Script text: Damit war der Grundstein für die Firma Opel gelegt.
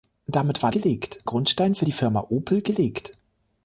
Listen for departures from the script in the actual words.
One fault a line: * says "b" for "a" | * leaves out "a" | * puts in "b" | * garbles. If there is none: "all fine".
* says "gelegt" for "der"